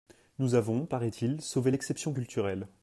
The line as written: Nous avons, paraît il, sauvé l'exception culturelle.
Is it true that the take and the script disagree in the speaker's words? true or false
false